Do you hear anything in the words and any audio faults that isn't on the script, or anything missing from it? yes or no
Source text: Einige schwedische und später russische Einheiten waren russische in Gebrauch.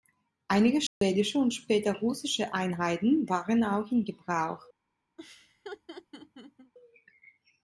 yes